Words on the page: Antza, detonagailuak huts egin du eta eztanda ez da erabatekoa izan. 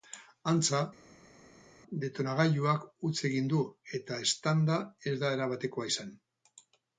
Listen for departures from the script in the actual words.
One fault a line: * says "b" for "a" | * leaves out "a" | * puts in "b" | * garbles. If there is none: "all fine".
all fine